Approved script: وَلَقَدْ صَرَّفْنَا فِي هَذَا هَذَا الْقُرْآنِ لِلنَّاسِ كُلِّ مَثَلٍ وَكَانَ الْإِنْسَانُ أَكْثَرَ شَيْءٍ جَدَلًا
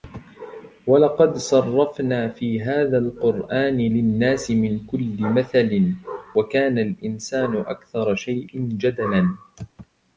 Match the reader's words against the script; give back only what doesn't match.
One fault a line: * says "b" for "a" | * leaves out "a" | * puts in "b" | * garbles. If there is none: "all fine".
* leaves out "هَذَا"
* puts in "مِنْ"